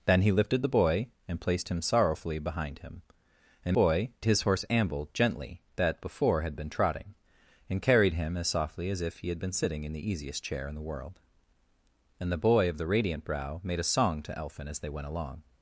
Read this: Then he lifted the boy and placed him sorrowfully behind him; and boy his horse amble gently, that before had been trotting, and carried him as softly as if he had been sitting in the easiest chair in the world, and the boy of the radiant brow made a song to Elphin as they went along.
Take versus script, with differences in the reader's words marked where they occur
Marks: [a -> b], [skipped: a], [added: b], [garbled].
Then he lifted the boy and placed him sorrowfully behind him; and boy his horse amble gently, that before had been trotting, and carried him as softly as if he had been sitting in the easiest chair in the world, and the boy of the radiant brow made a song to Elphin as they went along.